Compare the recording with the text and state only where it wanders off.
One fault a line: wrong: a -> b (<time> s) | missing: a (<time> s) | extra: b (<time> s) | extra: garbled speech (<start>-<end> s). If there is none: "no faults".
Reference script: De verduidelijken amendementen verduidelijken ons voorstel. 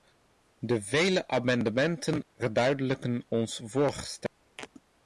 wrong: verduidelijken -> vele (0.8 s)